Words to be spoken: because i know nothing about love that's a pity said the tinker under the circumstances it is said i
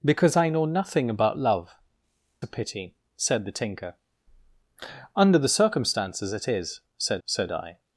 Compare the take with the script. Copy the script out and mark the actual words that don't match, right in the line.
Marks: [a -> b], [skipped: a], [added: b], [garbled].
because i know nothing about love [skipped: that's] a pity said the tinker under the circumstances it is said [added: said] i